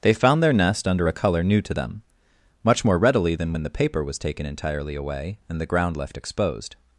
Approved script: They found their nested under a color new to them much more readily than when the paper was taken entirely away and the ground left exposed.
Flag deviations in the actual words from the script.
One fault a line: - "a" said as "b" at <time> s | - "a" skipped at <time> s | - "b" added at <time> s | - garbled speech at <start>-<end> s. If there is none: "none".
- "nested" said as "nest" at 0.5 s